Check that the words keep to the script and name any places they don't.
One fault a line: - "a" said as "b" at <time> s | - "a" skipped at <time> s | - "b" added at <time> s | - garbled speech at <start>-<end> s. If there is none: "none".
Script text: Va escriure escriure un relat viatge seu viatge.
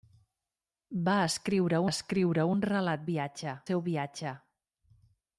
none